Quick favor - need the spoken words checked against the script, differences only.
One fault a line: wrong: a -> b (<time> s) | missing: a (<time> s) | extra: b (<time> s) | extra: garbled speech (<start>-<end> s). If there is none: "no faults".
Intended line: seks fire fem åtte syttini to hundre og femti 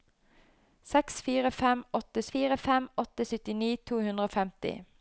extra: fire fem åtte (2.3 s)